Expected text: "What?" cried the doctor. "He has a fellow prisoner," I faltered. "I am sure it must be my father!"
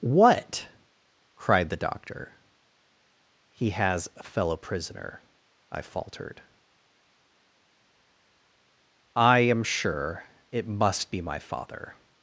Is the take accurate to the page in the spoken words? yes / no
yes